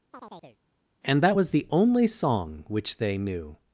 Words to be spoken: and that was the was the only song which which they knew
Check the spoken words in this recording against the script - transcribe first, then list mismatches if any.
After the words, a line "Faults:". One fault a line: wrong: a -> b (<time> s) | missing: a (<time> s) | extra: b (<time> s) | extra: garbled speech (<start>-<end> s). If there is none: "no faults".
and that was the only song which they knew
Faults:
missing: was the (1.7 s)
missing: which (3.0 s)